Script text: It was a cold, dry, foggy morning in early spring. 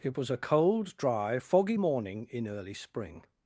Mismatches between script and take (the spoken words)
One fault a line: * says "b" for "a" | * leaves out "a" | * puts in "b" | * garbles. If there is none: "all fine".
all fine